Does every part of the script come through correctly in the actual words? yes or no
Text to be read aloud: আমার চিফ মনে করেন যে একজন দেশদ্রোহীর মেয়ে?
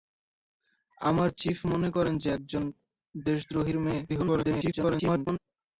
no